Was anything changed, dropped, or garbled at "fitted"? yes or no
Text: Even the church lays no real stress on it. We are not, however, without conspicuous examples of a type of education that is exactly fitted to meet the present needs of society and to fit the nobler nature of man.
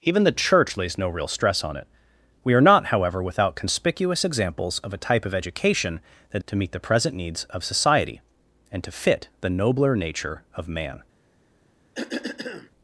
yes